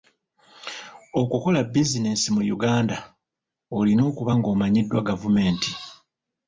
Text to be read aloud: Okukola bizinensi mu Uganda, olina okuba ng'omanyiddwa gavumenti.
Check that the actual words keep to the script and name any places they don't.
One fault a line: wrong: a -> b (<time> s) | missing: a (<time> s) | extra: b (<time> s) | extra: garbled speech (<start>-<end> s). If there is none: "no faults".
no faults